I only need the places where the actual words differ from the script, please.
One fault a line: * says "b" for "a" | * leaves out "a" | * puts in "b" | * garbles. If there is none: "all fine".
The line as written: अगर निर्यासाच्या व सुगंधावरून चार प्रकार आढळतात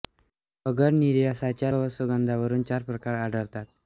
all fine